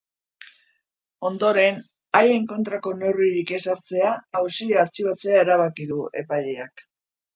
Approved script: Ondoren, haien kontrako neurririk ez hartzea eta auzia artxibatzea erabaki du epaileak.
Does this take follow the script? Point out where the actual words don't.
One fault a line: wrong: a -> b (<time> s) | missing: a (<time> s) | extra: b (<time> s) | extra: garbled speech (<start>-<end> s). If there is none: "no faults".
missing: eta (4.2 s)